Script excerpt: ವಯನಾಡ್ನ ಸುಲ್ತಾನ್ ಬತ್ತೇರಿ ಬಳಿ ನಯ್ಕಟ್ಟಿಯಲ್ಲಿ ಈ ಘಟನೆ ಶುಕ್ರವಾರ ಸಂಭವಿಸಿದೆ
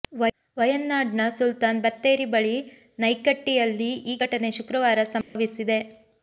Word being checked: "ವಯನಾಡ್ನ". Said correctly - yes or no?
yes